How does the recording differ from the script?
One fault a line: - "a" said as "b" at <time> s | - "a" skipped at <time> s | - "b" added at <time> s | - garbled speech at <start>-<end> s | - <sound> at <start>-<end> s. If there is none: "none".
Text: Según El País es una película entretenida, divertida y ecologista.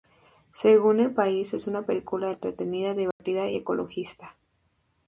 - dropout at 3.1-3.2 s